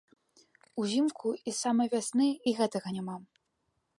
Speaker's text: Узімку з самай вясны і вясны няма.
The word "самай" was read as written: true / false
true